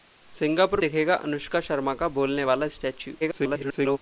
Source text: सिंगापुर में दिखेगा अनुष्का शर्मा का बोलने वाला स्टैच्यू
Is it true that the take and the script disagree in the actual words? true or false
true